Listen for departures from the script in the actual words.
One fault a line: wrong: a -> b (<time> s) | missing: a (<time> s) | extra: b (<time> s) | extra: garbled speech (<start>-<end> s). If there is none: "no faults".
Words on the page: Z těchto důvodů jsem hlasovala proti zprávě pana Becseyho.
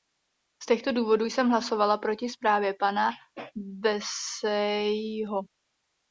no faults